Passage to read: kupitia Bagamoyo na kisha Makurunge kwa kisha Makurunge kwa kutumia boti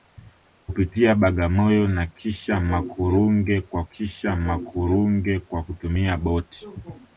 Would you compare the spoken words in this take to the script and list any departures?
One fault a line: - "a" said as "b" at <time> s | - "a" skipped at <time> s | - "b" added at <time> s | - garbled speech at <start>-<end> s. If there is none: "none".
none